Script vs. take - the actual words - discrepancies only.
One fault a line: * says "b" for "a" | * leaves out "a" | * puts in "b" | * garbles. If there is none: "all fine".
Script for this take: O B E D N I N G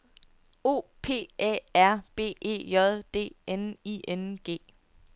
* puts in "P A R"
* puts in "J"